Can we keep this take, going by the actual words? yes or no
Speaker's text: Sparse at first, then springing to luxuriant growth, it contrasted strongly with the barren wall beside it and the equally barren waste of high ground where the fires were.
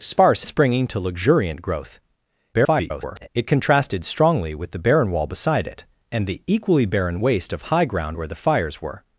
no